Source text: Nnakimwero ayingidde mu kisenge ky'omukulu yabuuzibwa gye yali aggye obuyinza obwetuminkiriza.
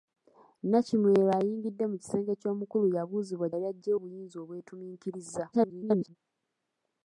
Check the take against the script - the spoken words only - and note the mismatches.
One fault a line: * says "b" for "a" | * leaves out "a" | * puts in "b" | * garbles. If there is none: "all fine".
* leaves out "gye"
* garbles